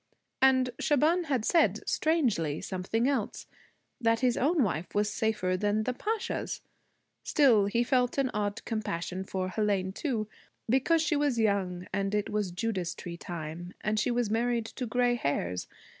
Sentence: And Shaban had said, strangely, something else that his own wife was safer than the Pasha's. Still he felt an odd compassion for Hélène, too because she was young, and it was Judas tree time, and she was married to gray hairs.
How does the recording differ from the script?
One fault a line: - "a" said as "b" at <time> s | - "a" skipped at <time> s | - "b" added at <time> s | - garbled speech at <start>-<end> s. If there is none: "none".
none